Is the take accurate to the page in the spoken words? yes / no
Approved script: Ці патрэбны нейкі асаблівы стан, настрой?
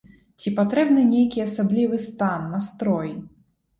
yes